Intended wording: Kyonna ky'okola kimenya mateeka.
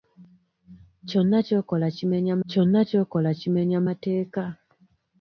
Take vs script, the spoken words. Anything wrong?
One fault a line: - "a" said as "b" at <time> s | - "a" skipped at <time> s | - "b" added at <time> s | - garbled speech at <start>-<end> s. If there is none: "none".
- "kyonna ky'okola kimenya" added at 2.5 s